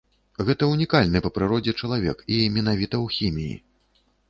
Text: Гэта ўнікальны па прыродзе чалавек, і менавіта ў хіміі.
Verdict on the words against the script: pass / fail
pass